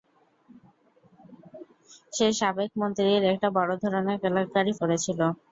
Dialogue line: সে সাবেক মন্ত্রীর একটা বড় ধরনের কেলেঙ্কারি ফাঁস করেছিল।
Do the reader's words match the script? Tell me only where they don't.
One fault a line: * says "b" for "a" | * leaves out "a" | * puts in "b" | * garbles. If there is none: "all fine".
* leaves out "ফাঁস"